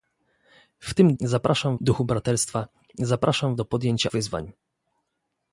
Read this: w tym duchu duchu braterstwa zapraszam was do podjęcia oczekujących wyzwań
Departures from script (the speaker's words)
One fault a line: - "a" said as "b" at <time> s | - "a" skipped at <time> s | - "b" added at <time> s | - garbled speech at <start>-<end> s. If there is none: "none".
- "duchu" said as "zapraszam" at 1.2 s
- "was" skipped at 3.5 s
- "oczekujących" skipped at 4.1 s